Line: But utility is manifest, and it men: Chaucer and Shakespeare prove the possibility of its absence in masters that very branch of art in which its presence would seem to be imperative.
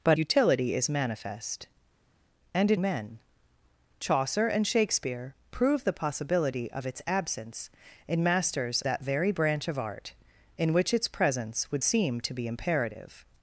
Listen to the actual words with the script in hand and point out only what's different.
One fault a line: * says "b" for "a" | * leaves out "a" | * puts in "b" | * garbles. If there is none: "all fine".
all fine